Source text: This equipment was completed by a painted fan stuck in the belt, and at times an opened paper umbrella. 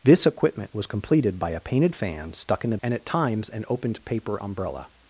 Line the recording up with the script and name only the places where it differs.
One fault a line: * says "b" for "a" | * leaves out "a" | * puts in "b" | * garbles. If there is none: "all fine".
* leaves out "belt"